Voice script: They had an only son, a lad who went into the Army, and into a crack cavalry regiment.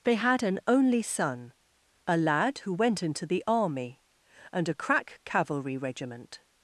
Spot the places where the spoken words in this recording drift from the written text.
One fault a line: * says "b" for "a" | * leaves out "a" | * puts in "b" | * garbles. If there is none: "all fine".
* leaves out "into"